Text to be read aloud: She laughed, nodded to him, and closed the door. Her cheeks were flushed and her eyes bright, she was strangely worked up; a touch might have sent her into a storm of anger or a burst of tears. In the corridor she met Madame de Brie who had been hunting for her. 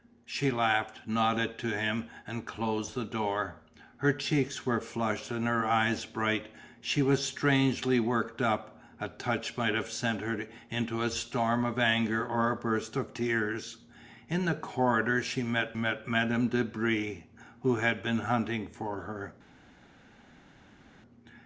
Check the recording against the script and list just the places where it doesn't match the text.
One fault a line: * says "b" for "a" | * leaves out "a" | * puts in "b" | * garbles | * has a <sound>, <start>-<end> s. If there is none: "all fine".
* puts in "met"